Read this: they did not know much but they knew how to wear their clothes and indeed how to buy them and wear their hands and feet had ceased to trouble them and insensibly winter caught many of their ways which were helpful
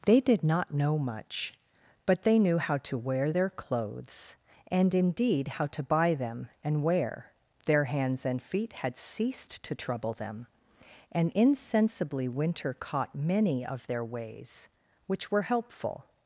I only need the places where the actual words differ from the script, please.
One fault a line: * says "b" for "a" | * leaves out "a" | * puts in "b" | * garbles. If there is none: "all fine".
all fine